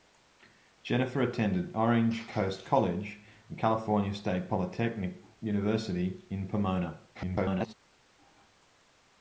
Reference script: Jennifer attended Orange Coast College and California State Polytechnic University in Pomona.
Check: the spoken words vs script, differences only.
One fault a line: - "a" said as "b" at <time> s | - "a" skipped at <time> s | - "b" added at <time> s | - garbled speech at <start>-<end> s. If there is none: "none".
- garbled speech at 7.1-7.7 s